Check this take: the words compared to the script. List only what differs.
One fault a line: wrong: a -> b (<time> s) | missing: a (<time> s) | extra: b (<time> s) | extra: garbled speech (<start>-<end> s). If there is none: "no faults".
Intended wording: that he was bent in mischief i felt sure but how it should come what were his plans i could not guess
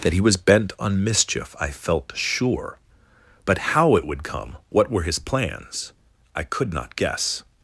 wrong: in -> on (0.8 s)
wrong: should -> would (4.1 s)